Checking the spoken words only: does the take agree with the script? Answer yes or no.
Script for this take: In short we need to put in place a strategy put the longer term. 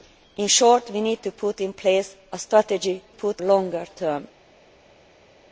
yes